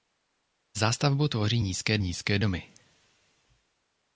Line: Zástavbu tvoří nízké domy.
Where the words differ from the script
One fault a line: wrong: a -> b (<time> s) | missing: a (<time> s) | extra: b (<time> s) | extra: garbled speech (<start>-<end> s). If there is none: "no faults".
extra: nízké (2.0 s)